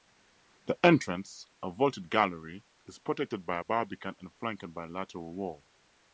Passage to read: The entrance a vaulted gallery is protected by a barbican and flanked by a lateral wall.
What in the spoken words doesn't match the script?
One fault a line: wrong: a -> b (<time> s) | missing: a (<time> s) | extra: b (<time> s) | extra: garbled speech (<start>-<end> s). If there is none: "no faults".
no faults